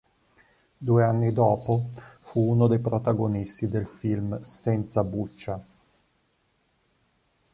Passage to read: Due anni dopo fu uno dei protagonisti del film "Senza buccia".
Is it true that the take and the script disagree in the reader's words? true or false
false